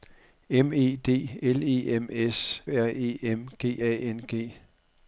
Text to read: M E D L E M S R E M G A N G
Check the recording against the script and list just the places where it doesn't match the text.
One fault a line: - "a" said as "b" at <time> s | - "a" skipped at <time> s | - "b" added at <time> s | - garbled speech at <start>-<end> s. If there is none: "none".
none